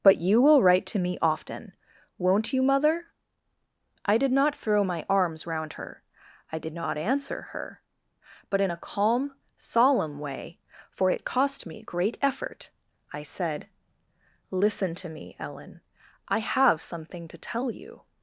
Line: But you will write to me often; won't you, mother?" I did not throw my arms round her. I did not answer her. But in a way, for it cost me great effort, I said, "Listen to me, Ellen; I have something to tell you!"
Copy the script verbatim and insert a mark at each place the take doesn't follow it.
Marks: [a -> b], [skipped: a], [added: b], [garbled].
But you will write to me often; won't you, mother?" I did not throw my arms round her. I did not answer her. But in a [added: calm solemn] way, for it cost me great effort, I said, "Listen to me, Ellen; I have something to tell you!"